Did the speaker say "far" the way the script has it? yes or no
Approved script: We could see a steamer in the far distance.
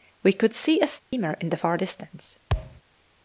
yes